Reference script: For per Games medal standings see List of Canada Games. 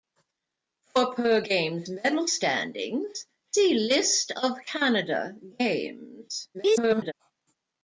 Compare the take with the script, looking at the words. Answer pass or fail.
fail